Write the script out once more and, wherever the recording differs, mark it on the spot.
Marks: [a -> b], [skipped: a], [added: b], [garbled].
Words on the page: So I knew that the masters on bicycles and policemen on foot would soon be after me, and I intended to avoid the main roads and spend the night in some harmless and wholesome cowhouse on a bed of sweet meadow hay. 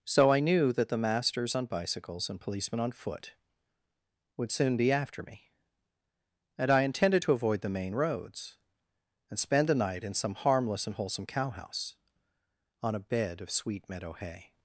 So I knew that the masters on bicycles and policemen on foot would soon be after me, and I intended to avoid the main roads and spend the night in some harmless and wholesome cowhouse on a bed of sweet meadow hay.